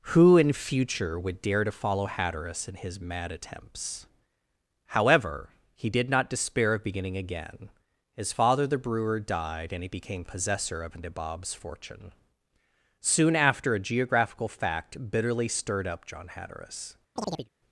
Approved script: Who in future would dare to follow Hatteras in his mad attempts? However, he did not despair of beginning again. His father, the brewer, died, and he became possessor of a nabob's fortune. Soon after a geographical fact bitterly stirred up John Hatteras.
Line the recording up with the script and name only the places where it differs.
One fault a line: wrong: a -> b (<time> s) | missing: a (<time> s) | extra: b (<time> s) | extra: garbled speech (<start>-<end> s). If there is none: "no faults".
missing: a (11.0 s)